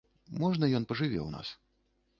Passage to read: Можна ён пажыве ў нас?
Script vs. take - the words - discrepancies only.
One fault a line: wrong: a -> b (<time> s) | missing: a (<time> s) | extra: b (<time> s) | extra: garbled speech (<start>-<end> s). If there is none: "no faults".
no faults